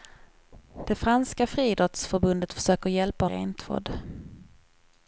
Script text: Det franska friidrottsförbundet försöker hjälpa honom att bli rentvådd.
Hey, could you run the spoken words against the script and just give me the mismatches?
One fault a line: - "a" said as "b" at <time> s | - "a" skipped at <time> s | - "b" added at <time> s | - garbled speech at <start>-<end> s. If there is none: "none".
- "honom att bli" skipped at 3.2 s